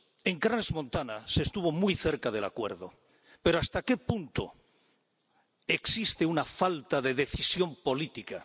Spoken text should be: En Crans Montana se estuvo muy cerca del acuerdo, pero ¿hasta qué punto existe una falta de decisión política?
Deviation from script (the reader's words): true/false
false